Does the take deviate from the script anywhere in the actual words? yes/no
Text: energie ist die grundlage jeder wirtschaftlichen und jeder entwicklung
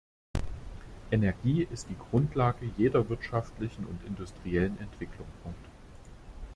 yes